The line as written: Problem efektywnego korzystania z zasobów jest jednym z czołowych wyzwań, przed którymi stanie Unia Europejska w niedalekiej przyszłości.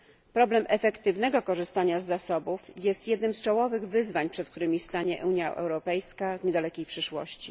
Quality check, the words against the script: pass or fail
pass